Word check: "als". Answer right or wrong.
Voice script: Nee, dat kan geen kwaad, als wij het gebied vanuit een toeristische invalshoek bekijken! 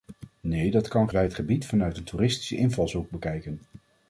wrong